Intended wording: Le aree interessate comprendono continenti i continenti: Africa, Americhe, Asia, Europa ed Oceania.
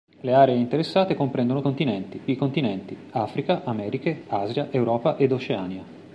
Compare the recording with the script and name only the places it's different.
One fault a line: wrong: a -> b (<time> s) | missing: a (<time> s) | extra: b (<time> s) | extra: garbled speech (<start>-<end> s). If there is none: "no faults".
no faults